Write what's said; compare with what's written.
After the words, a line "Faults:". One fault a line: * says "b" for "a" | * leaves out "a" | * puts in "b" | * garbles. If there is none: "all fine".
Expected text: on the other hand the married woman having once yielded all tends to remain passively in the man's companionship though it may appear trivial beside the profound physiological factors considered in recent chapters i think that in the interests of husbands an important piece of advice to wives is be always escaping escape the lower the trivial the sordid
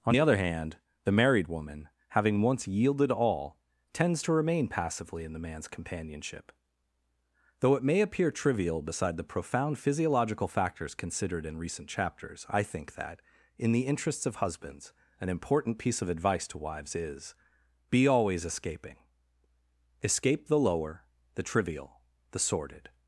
on the other hand the married woman having once yielded all tends to remain passively in the man's companionship though it may appear trivial beside the profound physiological factors considered in recent chapters i think that in the interests of husbands an important piece of advice to wives is be always escaping escape the lower the trivial the sordid
Faults:
all fine